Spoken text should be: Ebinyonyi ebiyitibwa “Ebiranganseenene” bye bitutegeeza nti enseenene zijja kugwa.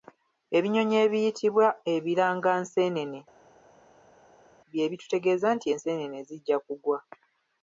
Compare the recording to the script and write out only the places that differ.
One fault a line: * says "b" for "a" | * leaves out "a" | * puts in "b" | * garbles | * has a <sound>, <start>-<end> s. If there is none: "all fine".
all fine